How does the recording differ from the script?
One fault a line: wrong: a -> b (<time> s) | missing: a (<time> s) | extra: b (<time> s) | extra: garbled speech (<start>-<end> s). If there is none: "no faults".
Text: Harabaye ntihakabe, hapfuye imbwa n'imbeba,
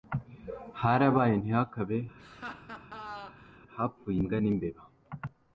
no faults